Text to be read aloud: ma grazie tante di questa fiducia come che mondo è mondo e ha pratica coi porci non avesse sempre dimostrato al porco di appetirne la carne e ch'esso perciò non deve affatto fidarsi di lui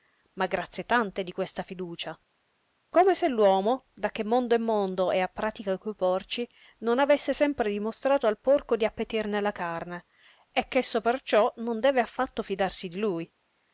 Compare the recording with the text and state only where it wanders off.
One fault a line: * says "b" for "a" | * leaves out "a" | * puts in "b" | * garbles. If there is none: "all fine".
* puts in "se l'uomo da"